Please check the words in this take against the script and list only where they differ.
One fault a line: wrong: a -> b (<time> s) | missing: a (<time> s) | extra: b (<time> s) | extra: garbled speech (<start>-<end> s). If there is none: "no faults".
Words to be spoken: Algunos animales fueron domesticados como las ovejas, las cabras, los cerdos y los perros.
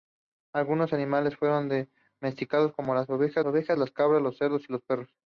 extra: ovejas (3.4 s)